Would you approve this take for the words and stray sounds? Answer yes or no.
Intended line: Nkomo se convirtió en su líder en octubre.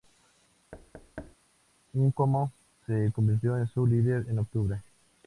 no